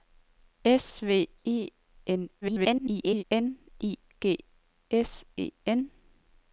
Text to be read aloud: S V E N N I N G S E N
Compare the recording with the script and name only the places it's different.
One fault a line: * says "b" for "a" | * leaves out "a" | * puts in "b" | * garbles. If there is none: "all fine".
* garbles
* leaves out "N"